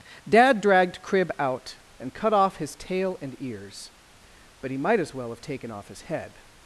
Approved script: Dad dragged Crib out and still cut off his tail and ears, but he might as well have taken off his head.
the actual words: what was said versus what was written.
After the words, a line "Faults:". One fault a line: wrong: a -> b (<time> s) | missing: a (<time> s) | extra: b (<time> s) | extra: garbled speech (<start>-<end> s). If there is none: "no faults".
Dad dragged Crib out and cut off his tail and ears, but he might as well have taken off his head.
Faults:
missing: still (2.1 s)